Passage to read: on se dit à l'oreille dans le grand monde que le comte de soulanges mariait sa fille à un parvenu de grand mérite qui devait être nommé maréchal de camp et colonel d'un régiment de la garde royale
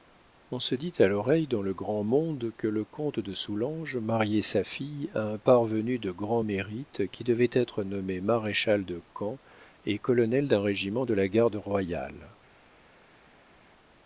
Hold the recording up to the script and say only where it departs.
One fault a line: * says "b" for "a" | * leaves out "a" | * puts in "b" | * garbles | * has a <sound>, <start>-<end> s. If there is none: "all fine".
all fine